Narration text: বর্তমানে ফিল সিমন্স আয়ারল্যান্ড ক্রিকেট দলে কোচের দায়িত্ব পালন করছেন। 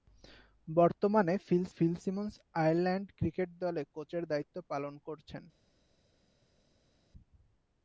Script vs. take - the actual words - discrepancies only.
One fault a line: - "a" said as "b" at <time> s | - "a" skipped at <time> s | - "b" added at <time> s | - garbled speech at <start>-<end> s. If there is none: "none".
- "ফিল" added at 1.7 s